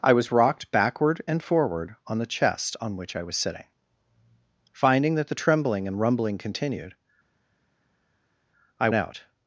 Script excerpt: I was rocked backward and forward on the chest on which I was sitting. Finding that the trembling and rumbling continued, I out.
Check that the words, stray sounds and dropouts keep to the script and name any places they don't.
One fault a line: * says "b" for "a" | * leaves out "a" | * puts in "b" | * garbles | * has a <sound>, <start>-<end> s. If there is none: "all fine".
all fine